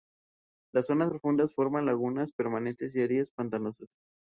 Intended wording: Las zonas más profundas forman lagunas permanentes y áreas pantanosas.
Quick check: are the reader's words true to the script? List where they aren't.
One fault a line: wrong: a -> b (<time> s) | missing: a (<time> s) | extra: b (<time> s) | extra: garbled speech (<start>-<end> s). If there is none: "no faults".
missing: más (1.1 s)